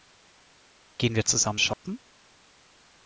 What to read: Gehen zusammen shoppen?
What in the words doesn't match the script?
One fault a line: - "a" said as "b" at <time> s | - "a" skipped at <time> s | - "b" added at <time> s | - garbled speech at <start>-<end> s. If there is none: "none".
- "wir" added at 1.2 s